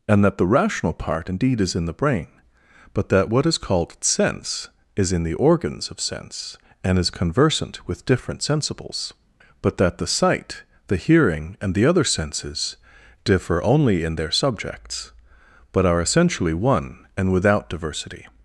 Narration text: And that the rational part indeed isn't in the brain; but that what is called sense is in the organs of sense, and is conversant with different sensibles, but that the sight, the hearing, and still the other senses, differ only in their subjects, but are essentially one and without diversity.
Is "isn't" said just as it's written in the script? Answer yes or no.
no